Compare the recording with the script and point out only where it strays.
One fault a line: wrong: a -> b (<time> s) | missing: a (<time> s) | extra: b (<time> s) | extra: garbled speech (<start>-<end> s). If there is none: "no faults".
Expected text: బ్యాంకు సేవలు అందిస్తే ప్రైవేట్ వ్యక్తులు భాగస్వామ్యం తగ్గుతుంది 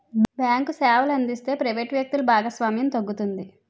no faults